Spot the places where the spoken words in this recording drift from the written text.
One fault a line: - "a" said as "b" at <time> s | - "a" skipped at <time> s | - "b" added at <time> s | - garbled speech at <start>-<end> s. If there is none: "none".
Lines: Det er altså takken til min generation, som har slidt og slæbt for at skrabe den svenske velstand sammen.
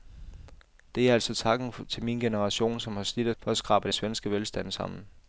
- "slæbt" skipped at 3.4 s
- "den" skipped at 3.9 s